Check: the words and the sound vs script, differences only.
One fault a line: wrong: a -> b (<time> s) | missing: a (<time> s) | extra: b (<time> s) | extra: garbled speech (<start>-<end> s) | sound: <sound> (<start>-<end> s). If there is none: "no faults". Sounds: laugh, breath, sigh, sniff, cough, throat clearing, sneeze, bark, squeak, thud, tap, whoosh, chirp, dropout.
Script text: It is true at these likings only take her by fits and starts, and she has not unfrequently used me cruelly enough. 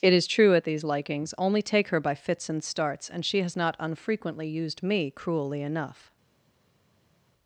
no faults